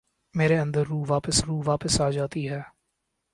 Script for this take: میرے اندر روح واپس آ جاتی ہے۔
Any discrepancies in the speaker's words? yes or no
yes